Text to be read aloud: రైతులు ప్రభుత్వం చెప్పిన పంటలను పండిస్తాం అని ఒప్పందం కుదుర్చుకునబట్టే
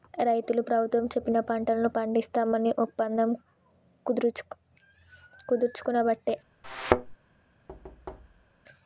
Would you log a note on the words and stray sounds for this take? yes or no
yes